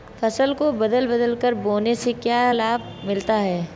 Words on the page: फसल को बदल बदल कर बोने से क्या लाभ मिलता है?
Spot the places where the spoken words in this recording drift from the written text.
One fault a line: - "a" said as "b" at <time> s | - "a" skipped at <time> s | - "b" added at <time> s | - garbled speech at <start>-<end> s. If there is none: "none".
none